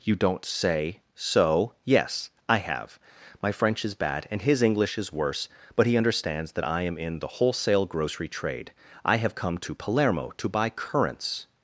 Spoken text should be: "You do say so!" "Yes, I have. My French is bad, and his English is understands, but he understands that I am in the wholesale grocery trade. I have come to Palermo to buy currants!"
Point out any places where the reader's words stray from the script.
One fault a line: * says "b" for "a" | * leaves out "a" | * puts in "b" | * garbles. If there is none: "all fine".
* says "don't" for "do"
* says "worse" for "understands"